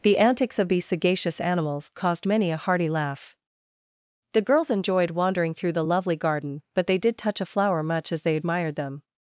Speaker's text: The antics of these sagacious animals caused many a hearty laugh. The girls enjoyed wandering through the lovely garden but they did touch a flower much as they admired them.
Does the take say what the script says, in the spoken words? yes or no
yes